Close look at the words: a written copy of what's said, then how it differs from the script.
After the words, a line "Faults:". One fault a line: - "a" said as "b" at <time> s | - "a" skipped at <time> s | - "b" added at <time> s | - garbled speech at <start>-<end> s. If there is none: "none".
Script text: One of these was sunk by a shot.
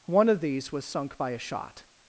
One of these was sunk by a shot.
Faults:
none